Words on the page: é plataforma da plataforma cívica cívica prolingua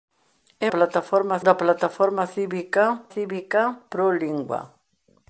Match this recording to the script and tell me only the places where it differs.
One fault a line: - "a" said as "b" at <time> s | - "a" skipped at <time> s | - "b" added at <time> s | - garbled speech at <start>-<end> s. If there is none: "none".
none